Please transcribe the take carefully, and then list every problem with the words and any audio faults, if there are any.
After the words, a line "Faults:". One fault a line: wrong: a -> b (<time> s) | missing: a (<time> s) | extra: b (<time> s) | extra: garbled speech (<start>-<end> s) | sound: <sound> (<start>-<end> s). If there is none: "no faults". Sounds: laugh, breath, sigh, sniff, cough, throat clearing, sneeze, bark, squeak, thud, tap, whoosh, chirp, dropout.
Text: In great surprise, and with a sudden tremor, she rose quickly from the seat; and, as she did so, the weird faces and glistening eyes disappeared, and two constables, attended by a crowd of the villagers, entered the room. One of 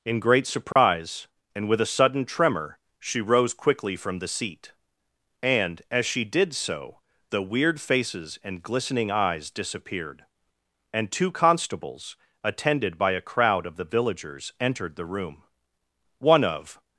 In great surprise, and with a sudden tremor, she rose quickly from the seat; and, as she did so, the weird faces and glistening eyes disappeared, and two constables, attended by a crowd of the villagers, entered the room. One of
Faults:
sound: dropout (0.7-0.8 s)